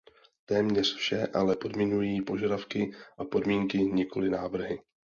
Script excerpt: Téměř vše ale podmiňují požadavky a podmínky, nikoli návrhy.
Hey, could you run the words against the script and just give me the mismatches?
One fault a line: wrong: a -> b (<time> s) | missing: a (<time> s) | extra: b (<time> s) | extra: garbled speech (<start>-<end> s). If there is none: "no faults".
no faults